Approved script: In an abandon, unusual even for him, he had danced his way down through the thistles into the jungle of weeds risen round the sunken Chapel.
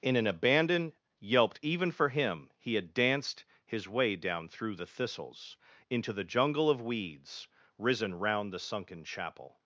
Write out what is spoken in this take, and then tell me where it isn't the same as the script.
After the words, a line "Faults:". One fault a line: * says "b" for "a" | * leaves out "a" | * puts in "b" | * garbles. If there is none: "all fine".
In an abandon, yelped even for him, he had danced his way down through the thistles into the jungle of weeds risen round the sunken Chapel.
Faults:
* says "yelped" for "unusual"